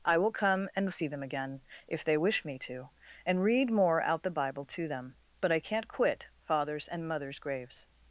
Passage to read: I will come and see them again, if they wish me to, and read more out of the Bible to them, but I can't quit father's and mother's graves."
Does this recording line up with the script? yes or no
no